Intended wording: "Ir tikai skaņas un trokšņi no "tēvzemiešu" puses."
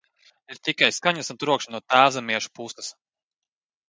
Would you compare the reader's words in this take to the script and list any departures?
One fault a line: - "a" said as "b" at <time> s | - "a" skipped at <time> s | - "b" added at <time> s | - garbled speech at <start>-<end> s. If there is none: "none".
none